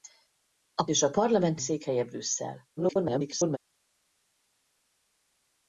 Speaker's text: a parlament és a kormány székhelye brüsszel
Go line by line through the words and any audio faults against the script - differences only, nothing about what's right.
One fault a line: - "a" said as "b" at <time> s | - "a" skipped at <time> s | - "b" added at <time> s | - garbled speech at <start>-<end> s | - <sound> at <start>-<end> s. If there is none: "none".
- "parlament" skipped at 0.8 s
- "kormány" said as "parlament" at 1.1 s
- garbled speech at 2.8-3.6 s